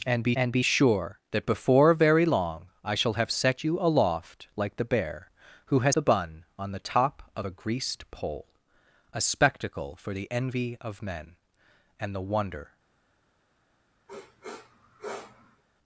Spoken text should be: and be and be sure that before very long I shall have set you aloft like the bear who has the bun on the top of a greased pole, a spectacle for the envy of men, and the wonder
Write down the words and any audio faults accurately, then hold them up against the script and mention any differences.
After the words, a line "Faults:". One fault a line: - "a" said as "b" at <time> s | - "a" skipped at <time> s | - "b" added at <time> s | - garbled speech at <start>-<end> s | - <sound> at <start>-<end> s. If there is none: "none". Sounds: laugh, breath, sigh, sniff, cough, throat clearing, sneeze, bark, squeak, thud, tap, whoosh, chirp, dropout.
and be and be sure that before very long I shall have set you aloft like the bear who has the bun on the top of a greased pole, a spectacle for the envy of men, and the wonder
Faults:
- sniff at 14.1-15.6 s